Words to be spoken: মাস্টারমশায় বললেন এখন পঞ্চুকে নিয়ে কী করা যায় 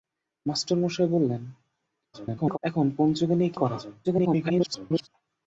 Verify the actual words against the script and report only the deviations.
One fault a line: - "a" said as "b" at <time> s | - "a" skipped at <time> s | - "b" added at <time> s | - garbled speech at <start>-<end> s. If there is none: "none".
- garbled speech at 2.1-2.6 s
- "কী" skipped at 3.5 s
- garbled speech at 4.0-5.1 s